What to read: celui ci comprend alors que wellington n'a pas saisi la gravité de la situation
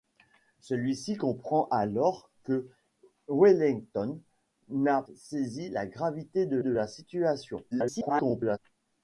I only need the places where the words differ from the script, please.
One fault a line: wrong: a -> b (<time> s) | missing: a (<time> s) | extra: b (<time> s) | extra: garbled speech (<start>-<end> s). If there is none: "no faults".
missing: pas (5.0 s)
extra: de (6.6 s)
extra: garbled speech (7.7-8.6 s)